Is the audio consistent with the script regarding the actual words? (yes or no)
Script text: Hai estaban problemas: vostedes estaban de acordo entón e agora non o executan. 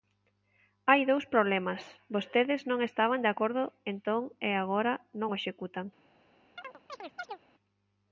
no